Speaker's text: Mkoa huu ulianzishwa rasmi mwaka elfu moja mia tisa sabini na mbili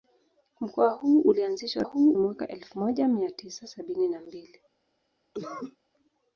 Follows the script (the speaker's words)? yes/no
no